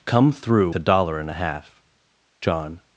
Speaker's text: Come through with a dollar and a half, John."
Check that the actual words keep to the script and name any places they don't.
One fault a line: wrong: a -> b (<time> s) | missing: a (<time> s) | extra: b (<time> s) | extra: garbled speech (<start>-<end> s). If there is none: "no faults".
missing: with (0.7 s)